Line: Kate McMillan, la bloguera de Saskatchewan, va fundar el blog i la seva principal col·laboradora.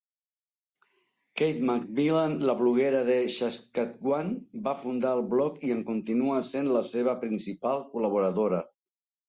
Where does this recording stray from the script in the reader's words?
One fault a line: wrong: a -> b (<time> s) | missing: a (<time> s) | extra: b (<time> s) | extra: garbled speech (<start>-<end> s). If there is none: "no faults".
extra: en continua sent (5.8 s)